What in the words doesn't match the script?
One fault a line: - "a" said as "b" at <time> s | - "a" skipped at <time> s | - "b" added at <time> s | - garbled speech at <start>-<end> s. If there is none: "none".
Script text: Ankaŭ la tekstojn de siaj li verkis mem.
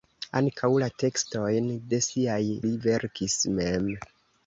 none